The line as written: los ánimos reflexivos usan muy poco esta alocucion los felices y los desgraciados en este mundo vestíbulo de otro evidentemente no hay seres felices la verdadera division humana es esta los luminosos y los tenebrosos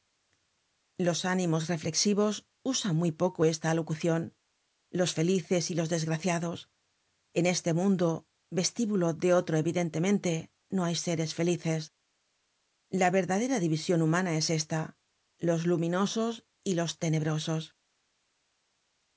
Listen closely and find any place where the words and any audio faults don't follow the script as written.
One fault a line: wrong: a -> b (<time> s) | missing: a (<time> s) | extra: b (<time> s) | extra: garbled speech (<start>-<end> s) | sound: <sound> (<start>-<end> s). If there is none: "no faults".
no faults